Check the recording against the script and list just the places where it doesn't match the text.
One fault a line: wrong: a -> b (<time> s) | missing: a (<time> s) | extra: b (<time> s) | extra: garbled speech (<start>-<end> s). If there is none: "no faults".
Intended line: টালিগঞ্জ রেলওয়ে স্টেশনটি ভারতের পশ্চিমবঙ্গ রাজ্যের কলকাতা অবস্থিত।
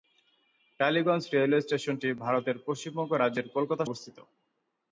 no faults